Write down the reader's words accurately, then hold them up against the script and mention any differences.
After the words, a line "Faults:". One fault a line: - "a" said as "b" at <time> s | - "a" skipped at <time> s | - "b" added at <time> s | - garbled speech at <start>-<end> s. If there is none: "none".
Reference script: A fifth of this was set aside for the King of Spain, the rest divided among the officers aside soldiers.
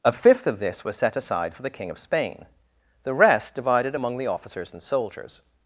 A fifth of this was set aside for the King of Spain, the rest divided among the officers and soldiers.
Faults:
- "aside" said as "and" at 4.7 s